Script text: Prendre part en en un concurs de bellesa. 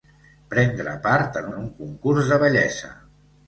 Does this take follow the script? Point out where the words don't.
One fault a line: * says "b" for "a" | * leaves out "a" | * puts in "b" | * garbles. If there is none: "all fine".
all fine